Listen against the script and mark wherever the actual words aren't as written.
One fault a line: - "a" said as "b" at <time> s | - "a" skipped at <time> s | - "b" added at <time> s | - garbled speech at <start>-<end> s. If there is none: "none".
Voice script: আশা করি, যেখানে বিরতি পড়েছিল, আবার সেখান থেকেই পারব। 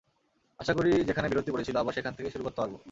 - "শুরু করতে" added at 2.3 s